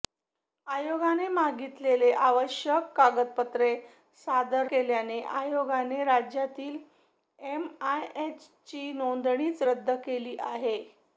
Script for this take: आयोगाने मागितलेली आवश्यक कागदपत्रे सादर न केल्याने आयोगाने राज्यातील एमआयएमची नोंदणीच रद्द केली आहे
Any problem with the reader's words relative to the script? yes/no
yes